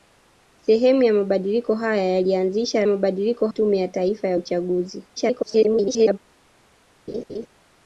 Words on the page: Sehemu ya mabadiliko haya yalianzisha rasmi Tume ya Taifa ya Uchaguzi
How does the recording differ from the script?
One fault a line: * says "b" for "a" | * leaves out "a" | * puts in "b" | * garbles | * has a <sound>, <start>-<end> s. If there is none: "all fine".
* says "mabadiliko" for "rasmi"
* garbles
* has a laugh, 7.1-7.5 s